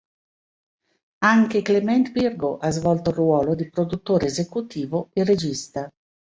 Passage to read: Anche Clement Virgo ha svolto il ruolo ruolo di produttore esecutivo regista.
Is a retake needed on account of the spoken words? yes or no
yes